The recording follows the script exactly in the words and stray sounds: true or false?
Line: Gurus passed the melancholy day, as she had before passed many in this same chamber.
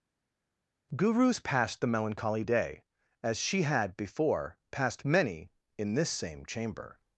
true